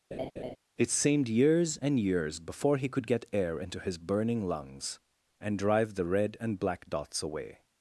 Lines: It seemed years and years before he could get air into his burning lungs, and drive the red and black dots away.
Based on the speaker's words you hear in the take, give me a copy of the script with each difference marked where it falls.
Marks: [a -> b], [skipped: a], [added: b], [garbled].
It seemed years and years before he could get air into his burning lungs, and drive the red and black dots away.